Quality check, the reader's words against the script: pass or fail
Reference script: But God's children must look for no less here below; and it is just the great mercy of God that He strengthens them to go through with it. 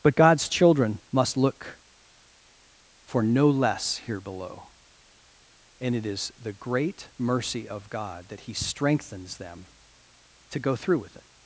fail